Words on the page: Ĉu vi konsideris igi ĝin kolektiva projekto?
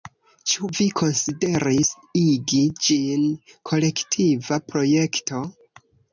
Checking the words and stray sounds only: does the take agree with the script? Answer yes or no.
yes